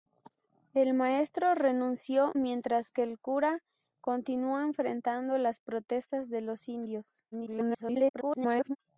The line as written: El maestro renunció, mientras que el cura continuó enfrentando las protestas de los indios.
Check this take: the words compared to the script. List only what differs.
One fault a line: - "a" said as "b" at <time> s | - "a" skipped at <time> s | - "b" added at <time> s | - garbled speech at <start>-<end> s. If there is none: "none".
- garbled speech at 7.3-8.8 s